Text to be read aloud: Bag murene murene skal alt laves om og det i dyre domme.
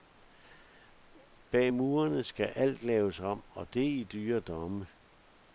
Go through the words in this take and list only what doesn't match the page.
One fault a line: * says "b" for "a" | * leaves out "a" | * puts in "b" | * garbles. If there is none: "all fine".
* leaves out "murene"